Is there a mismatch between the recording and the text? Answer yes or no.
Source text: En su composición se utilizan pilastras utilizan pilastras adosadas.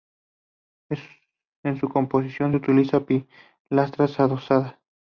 yes